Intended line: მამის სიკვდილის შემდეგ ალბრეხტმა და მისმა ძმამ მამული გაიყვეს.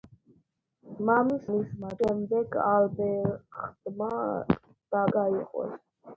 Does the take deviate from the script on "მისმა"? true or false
true